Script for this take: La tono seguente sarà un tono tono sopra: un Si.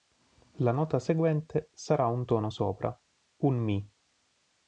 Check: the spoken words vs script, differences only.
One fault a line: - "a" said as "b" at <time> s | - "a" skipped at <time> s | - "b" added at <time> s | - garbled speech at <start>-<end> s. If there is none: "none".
- "tono" said as "nota" at 0.7 s
- "tono" skipped at 2.5 s
- "Si" said as "Mi" at 3.6 s